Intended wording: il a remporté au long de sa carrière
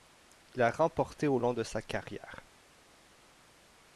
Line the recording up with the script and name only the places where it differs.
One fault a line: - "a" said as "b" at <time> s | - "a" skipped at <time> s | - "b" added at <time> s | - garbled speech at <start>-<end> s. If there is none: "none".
none